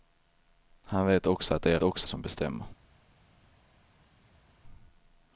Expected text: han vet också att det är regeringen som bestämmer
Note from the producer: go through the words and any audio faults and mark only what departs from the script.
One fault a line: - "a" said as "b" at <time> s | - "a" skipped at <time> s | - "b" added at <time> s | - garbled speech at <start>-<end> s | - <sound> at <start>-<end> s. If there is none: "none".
- "regeringen" said as "också" at 1.8 s